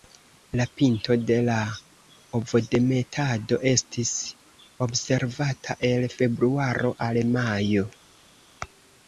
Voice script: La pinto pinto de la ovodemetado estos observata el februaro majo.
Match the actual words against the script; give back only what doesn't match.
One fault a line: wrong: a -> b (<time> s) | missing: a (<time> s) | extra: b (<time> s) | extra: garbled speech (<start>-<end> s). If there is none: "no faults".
missing: pinto (1.2 s)
wrong: estos -> estis (3.7 s)
extra: al (7.1 s)